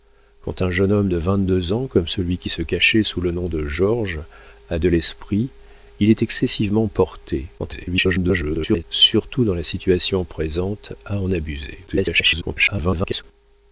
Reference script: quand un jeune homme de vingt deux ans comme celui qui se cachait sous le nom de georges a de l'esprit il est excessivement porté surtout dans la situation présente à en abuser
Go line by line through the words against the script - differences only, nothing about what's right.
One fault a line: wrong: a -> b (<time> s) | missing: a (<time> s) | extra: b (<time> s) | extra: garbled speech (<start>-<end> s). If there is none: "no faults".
extra: garbled speech (7.6-8.8 s)
extra: garbled speech (11.9-13.2 s)